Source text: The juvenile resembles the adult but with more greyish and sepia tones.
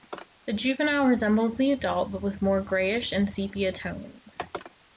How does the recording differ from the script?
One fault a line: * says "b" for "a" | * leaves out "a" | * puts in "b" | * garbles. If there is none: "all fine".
all fine